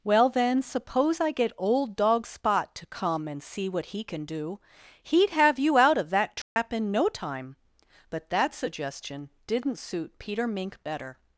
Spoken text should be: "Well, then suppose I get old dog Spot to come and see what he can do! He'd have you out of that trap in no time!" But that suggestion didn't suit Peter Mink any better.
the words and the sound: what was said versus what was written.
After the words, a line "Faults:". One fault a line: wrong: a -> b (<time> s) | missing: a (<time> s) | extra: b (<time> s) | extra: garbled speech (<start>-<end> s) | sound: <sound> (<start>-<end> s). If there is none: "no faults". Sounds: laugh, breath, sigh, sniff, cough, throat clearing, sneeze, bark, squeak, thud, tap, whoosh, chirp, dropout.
"Well, then suppose I get old dog Spot to come and see what he can do! He'd have you out of that trap in no time!" But that suggestion didn't suit Peter Mink better.
Faults:
sound: dropout (6.4-6.6 s)
missing: any (10.8 s)